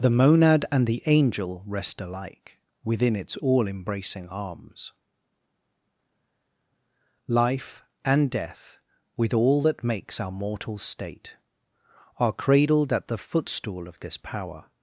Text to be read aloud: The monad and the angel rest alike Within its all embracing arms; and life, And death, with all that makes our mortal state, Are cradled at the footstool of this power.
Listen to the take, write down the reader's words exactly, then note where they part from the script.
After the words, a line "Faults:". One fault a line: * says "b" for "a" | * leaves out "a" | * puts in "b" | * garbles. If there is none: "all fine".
The monad and the angel rest alike Within its all embracing arms; life, And death, with all that makes our mortal state, Are cradled at the footstool of this power.
Faults:
* leaves out "and"